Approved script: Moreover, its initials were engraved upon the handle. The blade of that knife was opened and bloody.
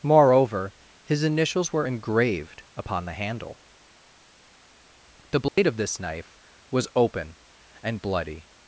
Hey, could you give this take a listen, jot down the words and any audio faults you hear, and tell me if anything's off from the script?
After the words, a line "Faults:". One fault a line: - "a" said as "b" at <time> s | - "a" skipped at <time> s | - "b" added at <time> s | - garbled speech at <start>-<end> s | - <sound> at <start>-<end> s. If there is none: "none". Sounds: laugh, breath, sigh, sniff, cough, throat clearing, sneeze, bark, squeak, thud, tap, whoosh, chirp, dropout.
Moreover, his initials were engraved upon the handle. The blade of this knife was open and bloody.
Faults:
- "its" said as "his" at 1.0 s
- dropout at 5.5-5.6 s
- "that" said as "this" at 5.8 s
- "opened" said as "open" at 6.9 s